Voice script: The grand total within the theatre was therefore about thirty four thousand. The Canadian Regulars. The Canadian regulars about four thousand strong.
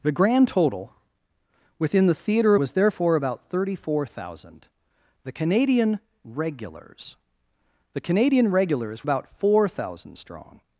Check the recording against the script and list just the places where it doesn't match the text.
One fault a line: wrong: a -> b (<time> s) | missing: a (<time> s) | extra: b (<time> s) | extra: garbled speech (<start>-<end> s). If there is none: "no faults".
no faults